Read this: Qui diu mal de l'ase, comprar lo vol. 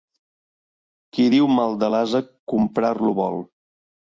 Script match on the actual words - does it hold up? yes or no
yes